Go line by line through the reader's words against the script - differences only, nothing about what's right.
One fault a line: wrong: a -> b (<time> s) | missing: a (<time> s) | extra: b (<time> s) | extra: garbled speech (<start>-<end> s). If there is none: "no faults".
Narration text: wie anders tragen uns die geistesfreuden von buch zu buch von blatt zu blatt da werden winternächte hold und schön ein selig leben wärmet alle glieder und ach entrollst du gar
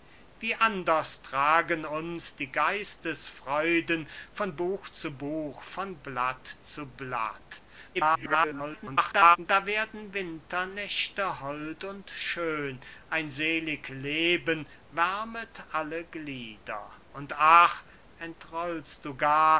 extra: garbled speech (7.9-9.4 s)